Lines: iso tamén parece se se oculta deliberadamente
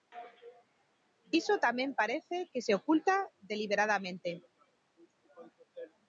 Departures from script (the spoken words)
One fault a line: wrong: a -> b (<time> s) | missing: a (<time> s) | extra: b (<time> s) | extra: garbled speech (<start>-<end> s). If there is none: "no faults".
wrong: se -> que (2.5 s)